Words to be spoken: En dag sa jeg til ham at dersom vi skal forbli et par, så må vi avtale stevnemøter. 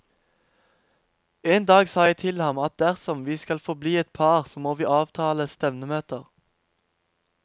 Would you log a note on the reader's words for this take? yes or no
no